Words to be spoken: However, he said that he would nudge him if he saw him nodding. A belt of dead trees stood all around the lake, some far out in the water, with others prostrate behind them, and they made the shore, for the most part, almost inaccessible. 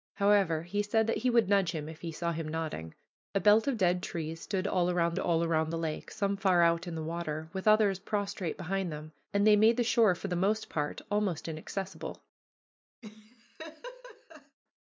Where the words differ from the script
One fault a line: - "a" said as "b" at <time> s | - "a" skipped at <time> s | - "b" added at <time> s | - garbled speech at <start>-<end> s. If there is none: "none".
- "all around" added at 5.2 s